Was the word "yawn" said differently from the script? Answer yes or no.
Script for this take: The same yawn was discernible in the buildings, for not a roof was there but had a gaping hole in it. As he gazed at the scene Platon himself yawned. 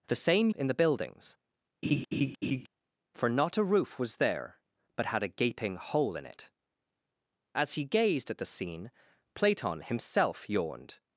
yes